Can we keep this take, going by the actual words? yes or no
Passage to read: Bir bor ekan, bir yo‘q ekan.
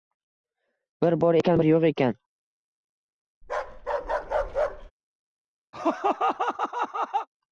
yes